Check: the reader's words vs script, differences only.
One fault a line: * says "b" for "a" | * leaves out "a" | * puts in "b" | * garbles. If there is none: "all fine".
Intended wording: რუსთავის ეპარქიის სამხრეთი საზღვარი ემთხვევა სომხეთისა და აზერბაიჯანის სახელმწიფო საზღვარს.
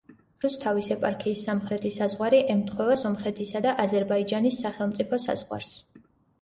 all fine